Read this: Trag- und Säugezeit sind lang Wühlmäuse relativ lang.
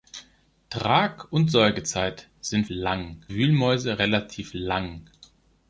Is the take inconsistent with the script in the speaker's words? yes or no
no